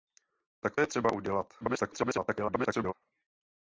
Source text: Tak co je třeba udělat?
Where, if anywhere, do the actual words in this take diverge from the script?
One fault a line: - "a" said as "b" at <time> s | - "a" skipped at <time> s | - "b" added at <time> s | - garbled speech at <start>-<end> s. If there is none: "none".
- "co" skipped at 0.8 s
- garbled speech at 1.6-2.9 s